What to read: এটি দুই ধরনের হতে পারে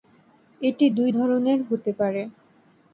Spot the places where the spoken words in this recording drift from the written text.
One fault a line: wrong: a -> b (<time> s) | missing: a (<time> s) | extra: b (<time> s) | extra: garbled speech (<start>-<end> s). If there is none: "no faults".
no faults